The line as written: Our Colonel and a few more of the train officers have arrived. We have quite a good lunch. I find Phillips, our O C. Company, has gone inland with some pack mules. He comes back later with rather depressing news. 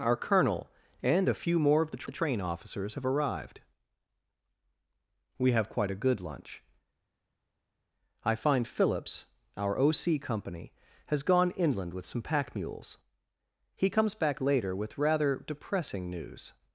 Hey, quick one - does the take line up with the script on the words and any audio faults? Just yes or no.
no